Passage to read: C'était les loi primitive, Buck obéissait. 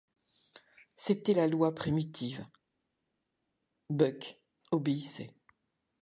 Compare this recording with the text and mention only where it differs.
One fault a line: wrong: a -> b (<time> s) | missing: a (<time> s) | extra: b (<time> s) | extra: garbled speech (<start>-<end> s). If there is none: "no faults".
wrong: les -> la (1.3 s)